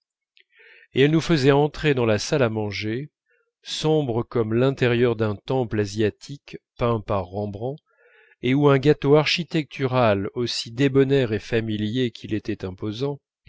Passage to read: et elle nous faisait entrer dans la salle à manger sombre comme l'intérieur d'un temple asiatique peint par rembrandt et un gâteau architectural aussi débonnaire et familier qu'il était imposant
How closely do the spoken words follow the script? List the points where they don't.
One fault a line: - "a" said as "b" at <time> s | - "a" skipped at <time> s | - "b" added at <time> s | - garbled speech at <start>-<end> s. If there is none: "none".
- "où" added at 8.6 s